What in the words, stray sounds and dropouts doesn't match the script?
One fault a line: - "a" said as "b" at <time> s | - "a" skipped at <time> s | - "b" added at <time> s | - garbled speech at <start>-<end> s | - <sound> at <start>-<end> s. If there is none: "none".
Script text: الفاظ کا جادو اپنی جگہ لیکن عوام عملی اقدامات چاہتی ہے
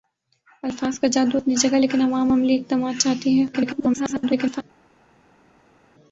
- garbled speech at 3.5-4.6 s